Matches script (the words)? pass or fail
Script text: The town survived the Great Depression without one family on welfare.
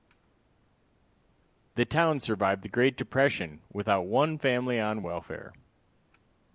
pass